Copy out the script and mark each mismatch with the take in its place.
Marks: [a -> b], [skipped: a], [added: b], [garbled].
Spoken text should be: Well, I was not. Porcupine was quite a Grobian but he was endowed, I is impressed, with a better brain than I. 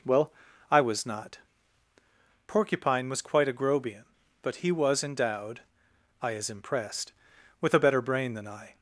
Well, I was not. Porcupine was quite a Grobian but he was endowed, I is impressed, with a better brain than I.